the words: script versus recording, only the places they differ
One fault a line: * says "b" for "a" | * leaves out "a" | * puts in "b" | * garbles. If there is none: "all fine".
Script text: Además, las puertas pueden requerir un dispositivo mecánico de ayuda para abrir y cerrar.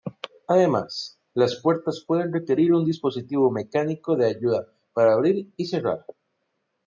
all fine